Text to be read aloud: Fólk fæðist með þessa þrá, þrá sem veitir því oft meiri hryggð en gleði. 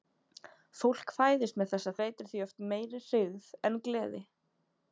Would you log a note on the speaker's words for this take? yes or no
yes